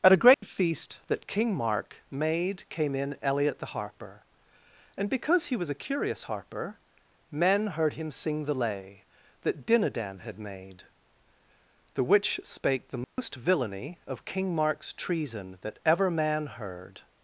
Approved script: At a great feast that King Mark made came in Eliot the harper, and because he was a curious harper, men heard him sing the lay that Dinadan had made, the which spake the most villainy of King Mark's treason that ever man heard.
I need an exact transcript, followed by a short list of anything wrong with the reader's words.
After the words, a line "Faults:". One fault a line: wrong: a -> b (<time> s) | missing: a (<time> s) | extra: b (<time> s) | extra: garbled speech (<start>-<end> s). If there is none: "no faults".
At a great feast that King Mark made came in Eliot the harper, and because he was a curious harper, men heard him sing the lay that Dinadan had made, the which spake the most villainy of King Mark's treason that ever man heard.
Faults:
no faults